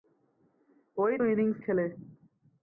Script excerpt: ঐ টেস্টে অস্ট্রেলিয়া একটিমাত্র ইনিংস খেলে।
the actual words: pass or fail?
fail